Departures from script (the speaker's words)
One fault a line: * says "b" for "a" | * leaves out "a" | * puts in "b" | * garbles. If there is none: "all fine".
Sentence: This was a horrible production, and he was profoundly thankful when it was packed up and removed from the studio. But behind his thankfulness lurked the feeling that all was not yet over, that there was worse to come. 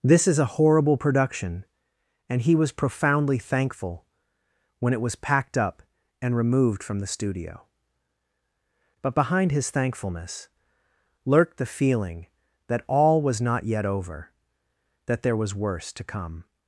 * says "is" for "was"